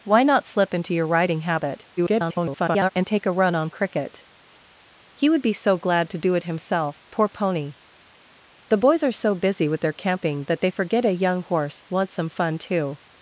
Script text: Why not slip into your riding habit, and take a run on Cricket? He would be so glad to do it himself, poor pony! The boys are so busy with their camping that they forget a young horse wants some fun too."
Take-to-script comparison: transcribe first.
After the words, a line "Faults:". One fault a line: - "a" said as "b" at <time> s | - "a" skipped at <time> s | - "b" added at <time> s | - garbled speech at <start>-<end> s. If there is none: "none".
Why not slip into your riding habit, [garbled] and take a run on Cricket? He would be so glad to do it himself, poor pony! The boys are so busy with their camping that they forget a young horse wants some fun too."
Faults:
- garbled speech at 2.0-2.9 s